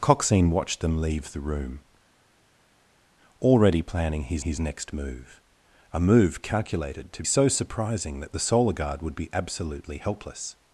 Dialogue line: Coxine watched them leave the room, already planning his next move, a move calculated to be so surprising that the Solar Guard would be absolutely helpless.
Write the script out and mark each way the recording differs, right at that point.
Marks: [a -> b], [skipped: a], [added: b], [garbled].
Coxine watched them leave the room, already planning his [added: his] next move, a move calculated to [skipped: be] so surprising that the Solar Guard would be absolutely helpless.